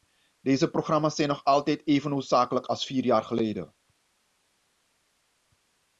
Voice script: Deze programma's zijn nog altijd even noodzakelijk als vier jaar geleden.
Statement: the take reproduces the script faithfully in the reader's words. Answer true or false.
true